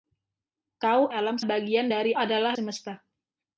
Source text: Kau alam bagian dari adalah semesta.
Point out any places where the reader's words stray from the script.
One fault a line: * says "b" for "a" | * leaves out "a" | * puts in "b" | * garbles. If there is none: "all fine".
all fine